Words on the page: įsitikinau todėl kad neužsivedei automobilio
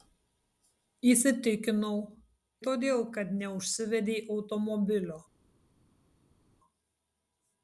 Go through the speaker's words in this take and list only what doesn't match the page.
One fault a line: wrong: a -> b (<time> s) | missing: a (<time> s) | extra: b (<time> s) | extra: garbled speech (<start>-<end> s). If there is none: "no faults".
no faults